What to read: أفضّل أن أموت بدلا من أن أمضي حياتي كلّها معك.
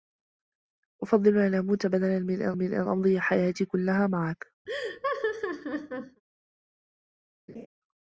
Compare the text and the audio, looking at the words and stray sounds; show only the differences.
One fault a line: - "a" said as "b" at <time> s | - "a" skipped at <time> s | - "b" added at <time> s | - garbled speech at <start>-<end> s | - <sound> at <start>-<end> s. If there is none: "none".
- "من أن" added at 2.5 s
- laugh at 4.7-6.2 s
- laugh at 7.5-7.7 s